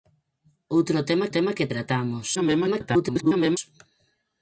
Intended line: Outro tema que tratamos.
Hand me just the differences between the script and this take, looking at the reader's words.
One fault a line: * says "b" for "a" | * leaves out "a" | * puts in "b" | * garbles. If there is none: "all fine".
* puts in "tema"
* garbles